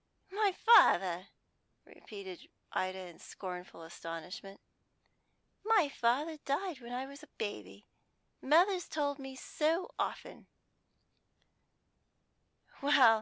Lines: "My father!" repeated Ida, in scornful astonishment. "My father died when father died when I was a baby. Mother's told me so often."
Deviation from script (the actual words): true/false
true